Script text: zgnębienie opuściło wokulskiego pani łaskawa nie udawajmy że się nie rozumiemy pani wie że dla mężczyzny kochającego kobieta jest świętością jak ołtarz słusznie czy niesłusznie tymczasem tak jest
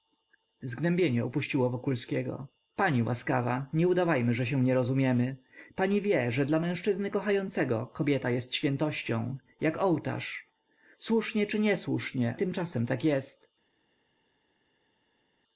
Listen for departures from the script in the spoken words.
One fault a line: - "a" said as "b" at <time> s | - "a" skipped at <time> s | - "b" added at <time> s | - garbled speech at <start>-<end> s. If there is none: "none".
none